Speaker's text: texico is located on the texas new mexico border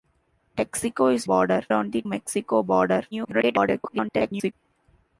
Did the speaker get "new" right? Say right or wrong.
wrong